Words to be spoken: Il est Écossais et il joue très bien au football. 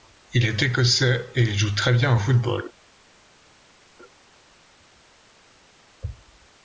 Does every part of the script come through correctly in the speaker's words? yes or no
yes